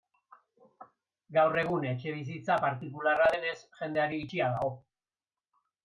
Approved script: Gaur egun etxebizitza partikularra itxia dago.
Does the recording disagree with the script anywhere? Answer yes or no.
yes